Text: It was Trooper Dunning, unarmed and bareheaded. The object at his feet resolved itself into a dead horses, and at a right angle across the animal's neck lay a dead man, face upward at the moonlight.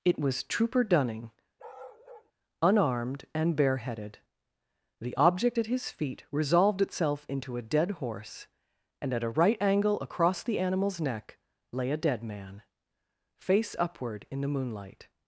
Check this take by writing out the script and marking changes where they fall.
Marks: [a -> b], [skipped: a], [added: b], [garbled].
It was Trooper Dunning, unarmed and bareheaded. The object at his feet resolved itself into a dead [horses, -> horse] and at a right angle across the animal's neck lay a dead man, face upward [at -> in] the moonlight.